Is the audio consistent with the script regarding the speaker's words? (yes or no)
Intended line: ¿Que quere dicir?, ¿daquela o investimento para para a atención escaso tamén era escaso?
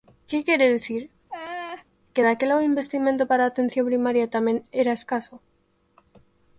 no